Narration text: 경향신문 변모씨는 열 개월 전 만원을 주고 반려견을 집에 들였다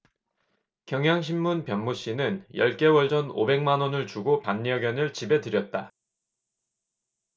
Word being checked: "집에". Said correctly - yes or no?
yes